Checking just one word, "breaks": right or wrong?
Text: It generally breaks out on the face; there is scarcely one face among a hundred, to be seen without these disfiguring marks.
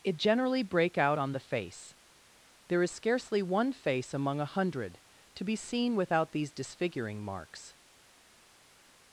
wrong